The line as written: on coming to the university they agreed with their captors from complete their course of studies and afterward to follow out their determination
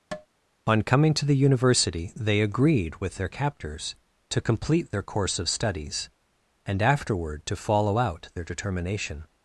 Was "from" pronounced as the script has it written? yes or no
no